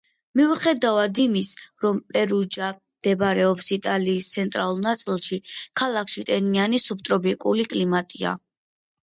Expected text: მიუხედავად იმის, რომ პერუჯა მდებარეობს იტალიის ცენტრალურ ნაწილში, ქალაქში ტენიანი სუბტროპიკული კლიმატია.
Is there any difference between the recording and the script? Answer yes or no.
no